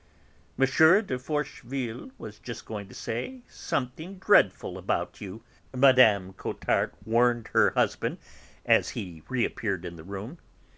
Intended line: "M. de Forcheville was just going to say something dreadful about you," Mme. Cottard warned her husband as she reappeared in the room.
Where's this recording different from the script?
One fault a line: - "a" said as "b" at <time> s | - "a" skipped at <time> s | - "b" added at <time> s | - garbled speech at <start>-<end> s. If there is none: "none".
- "she" said as "he" at 8.9 s